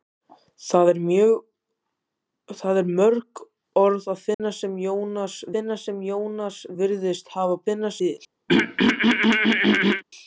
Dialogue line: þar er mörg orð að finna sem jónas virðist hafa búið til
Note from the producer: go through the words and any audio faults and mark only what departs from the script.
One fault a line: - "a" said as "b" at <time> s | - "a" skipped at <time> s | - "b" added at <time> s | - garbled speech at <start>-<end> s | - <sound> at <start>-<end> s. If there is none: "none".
- dropout at 4.3-4.4 s
- "finna sem jónas" added at 5.5 s
- "búið" said as "finna" at 7.7 s
- throat clearing at 8.5-10.0 s